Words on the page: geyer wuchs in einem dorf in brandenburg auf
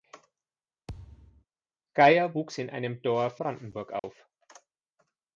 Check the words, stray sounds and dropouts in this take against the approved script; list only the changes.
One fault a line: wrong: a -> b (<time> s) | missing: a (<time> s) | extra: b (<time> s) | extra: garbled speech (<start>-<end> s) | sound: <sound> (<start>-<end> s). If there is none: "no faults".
sound: thud (0.9-1.4 s)
missing: in (3.4 s)
sound: dropout (4.0-4.0 s)